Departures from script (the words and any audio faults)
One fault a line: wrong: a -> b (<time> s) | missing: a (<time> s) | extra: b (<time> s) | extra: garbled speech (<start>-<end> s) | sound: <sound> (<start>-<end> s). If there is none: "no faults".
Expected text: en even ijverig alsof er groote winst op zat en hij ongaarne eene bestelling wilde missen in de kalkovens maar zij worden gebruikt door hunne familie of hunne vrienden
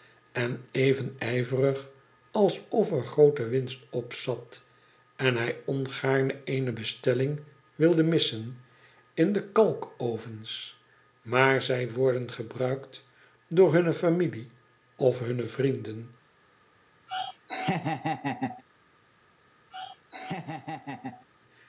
sound: laugh (17.1-18.6 s)
sound: laugh (19.7-21.2 s)